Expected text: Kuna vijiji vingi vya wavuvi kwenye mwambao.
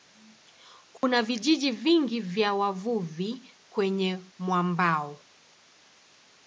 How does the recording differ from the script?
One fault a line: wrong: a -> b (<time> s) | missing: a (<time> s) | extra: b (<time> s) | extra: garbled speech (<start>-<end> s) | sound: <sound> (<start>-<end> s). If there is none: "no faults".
sound: dropout (1.0-1.0 s)